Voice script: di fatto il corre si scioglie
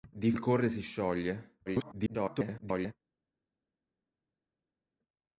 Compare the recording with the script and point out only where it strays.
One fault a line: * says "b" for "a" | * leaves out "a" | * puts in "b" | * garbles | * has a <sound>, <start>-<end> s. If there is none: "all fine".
* leaves out "fatto"
* garbles